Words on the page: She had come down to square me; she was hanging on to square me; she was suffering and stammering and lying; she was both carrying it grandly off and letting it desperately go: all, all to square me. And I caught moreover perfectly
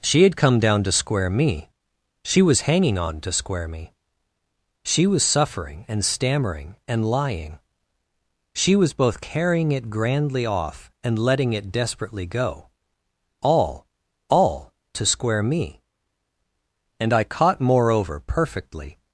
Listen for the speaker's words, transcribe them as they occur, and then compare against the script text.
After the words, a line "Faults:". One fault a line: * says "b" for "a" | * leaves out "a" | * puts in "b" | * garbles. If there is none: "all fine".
She had come down to square me; she was hanging on to square me; she was suffering and stammering and lying; she was both carrying it grandly off and letting it desperately go: all, all to square me. And I caught moreover perfectly
Faults:
all fine